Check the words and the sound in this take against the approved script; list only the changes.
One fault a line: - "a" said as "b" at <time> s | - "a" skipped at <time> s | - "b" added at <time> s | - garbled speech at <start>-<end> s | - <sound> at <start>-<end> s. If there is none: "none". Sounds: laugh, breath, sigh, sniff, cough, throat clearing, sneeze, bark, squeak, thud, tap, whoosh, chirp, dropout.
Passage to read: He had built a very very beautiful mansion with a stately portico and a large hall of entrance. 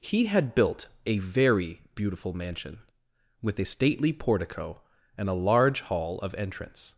- "very" skipped at 1.8 s